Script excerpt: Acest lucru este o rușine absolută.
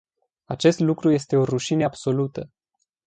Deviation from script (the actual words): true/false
false